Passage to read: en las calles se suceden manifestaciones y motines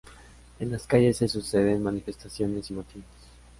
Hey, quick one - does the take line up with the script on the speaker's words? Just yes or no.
yes